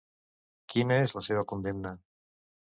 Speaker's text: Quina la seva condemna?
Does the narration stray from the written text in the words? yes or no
yes